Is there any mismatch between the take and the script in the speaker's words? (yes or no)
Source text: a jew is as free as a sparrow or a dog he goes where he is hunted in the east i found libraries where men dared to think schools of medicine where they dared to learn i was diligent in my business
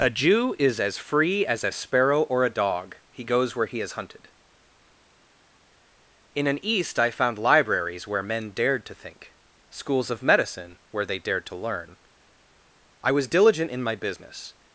yes